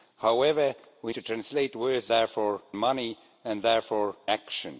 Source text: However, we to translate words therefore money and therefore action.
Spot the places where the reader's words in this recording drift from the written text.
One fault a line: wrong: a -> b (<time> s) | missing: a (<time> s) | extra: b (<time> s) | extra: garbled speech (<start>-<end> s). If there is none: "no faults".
no faults